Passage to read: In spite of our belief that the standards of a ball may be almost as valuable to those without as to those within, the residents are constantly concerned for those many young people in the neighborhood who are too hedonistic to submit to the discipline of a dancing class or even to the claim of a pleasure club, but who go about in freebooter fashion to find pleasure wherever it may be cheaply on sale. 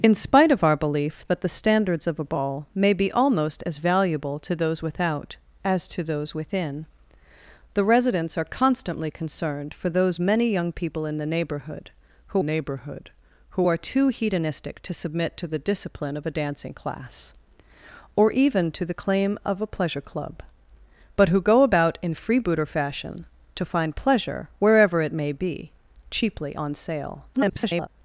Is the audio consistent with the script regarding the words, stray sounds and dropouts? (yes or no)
no